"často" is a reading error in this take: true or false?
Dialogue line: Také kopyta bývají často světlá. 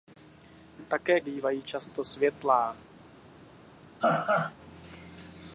false